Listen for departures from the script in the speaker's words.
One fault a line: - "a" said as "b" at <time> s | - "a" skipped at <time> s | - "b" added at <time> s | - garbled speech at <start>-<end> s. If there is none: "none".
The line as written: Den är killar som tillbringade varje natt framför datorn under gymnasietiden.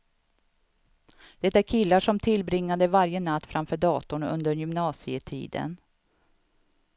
- "Den" said as "Det" at 1.4 s